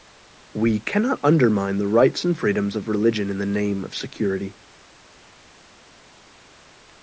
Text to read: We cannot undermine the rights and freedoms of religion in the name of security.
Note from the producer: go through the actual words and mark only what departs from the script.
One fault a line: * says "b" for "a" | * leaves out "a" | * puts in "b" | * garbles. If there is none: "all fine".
all fine